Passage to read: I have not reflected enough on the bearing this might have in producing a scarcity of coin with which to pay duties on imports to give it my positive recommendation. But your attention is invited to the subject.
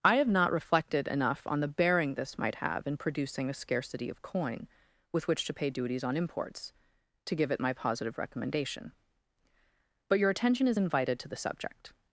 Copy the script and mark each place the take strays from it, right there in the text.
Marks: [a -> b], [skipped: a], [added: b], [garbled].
I have not reflected enough on the bearing this might have in producing a scarcity of coin with which to pay duties on imports to give it my positive recommendation. But your attention is invited to the subject.